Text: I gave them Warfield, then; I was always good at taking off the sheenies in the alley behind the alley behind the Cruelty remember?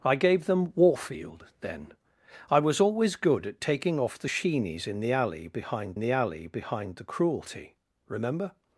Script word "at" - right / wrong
right